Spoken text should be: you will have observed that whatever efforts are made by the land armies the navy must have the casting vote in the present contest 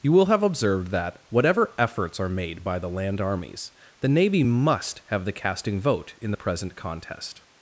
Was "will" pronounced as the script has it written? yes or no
yes